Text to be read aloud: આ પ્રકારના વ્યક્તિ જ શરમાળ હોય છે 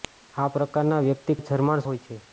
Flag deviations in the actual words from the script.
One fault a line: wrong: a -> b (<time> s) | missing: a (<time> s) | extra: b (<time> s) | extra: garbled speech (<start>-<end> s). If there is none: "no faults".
no faults